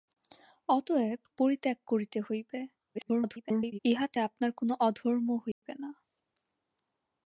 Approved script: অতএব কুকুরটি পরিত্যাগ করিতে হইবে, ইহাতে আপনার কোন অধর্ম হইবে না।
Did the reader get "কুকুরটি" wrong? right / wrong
wrong